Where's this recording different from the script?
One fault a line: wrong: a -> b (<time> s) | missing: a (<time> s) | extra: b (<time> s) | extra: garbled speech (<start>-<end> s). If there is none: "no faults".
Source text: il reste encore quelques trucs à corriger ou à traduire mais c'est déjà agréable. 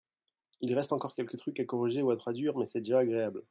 no faults